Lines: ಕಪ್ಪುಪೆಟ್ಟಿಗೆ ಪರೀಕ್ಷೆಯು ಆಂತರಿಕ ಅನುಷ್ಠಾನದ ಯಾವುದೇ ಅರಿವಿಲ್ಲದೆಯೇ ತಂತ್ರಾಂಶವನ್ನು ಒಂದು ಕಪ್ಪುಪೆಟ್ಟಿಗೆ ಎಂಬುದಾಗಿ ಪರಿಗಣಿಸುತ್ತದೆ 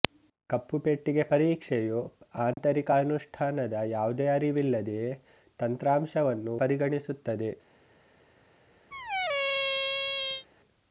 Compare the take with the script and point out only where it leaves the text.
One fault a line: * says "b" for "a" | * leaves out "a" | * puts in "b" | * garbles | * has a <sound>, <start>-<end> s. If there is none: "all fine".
* has a dropout, 2.5-2.6 s
* leaves out "ಒಂದು ಕಪ್ಪುಪೆಟ್ಟಿಗೆ ಎಂಬುದಾಗಿ"
* has a squeak, 8.9-10.5 s